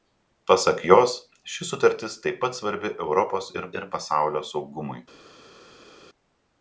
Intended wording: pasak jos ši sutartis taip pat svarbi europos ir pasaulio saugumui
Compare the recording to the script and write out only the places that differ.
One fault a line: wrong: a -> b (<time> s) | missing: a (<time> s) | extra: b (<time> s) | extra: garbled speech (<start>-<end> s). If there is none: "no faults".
extra: ir (3.8 s)